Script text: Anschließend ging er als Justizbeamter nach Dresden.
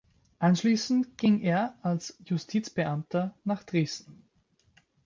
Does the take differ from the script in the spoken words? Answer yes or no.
no